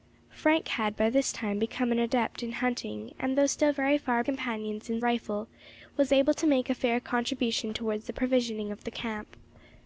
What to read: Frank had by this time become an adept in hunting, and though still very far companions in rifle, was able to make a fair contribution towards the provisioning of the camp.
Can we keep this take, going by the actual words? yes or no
yes